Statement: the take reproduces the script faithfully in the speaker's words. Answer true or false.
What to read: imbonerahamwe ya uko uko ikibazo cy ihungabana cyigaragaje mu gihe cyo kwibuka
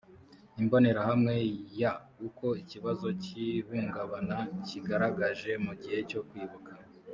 false